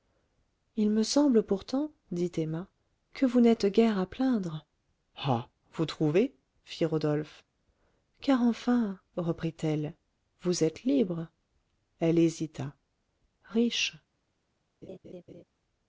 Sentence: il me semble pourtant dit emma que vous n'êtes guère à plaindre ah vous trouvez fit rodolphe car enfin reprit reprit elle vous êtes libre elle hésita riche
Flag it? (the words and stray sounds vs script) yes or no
yes